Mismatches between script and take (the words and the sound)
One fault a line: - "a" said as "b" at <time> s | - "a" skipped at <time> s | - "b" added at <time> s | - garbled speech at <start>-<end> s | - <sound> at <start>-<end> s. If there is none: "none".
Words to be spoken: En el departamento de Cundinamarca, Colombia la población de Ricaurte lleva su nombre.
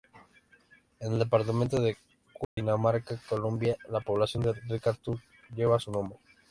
- dropout at 2.4-2.6 s